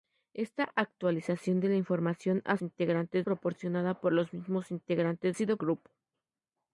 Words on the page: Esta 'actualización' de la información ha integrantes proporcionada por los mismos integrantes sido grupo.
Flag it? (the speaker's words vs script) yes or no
no